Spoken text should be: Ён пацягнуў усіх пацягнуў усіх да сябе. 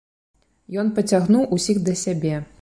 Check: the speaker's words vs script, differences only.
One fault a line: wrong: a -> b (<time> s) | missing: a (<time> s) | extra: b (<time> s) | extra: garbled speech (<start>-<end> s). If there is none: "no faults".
missing: пацягнуў усіх (1.8 s)